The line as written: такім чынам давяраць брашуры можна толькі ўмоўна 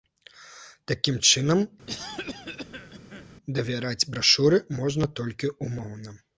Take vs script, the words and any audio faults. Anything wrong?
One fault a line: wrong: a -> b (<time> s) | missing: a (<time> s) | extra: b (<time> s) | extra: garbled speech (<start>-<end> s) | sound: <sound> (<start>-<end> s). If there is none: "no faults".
sound: cough (1.9-3.4 s)